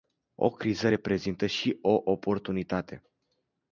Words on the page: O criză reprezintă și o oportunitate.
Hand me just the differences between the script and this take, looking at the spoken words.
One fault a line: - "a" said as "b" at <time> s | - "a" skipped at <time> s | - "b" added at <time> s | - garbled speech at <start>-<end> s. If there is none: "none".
none